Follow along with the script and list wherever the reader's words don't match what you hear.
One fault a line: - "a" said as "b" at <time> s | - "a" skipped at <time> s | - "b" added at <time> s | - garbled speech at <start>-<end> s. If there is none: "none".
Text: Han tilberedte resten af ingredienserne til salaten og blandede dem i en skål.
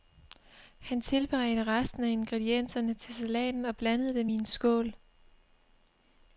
none